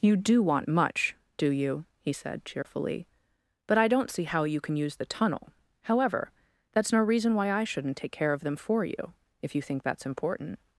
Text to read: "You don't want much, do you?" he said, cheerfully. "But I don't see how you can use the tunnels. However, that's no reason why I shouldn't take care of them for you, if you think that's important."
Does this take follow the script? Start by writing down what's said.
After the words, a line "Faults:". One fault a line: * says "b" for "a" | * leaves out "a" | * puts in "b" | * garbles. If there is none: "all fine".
"You do want much, do you?" he said, cheerfully. "But I don't see how you can use the tunnel. However, that's no reason why I shouldn't take care of them for you, if you think that's important."
Faults:
* says "do" for "don't"
* says "tunnel" for "tunnels"